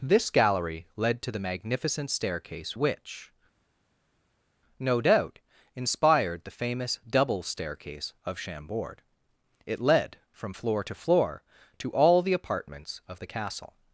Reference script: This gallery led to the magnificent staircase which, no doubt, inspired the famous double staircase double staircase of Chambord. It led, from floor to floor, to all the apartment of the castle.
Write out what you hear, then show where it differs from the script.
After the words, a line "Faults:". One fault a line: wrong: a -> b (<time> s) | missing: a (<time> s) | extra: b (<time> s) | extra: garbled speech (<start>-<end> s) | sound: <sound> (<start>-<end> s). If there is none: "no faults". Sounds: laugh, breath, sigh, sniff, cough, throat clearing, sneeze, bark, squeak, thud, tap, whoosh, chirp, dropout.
This gallery led to the magnificent staircase which, no doubt, inspired the famous double staircase of Chambord. It led, from floor to floor, to all the apartments of the castle.
Faults:
missing: double staircase (8.1 s)
wrong: apartment -> apartments (12.3 s)